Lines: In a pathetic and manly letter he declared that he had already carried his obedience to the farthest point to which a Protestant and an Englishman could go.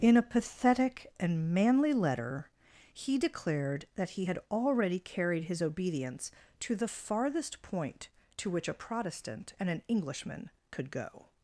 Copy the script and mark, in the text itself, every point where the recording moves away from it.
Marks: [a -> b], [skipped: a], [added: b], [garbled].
In a pathetic and manly letter he declared that he had already carried his obedience to the farthest point to which a Protestant and an Englishman could go.